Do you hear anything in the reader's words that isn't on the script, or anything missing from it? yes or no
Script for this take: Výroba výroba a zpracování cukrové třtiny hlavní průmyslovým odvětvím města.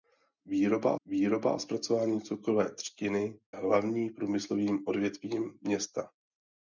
no